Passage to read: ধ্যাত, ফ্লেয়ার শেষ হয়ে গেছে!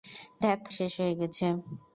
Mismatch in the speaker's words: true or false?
true